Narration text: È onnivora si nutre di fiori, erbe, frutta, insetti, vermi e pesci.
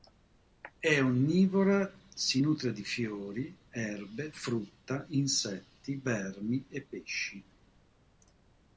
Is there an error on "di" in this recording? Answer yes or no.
no